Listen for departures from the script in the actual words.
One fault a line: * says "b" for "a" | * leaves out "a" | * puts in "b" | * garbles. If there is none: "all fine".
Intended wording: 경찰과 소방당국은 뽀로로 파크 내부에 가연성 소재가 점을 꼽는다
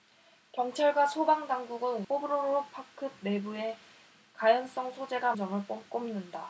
all fine